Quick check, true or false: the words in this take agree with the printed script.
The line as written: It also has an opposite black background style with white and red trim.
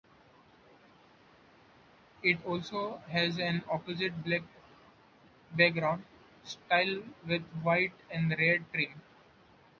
true